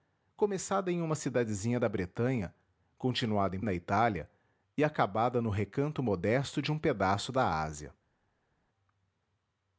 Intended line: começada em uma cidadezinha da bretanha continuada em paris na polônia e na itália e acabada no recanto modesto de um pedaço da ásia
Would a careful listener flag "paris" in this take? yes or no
yes